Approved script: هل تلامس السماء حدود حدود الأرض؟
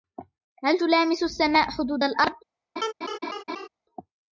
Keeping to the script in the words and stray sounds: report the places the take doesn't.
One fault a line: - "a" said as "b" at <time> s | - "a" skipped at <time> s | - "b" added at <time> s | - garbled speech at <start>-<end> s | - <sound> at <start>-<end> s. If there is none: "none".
- "حدود" skipped at 2.0 s
- laugh at 2.8-3.7 s